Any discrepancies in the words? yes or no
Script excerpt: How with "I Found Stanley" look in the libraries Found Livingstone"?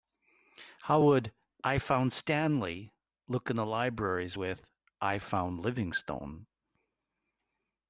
yes